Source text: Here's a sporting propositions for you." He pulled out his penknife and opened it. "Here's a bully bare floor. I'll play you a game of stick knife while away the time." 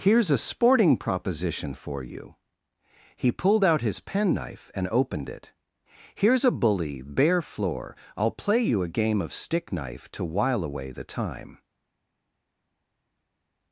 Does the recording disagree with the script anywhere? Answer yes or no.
yes